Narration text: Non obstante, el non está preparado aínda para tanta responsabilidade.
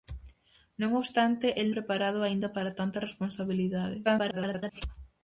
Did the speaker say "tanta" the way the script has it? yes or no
yes